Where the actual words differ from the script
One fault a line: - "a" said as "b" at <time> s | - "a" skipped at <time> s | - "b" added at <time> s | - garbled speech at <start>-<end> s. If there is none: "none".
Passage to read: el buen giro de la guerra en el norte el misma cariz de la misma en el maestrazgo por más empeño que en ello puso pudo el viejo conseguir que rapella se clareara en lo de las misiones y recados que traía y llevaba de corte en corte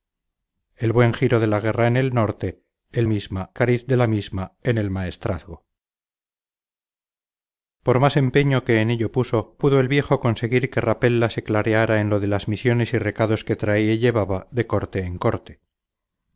none